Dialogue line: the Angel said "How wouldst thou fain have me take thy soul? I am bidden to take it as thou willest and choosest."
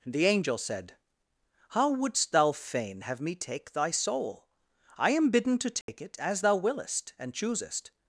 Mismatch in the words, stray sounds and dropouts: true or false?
true